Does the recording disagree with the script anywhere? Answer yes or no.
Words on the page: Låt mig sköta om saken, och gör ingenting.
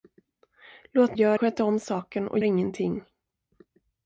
yes